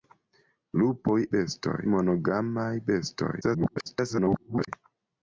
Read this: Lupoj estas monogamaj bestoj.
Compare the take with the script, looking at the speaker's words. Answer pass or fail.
fail